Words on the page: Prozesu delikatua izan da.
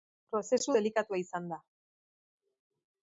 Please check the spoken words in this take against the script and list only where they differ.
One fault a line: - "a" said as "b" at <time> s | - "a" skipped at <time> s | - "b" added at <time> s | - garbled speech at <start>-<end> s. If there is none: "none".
none